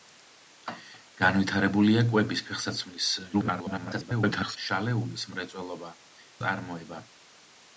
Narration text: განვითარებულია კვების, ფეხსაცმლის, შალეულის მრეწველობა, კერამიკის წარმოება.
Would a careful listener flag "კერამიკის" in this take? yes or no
yes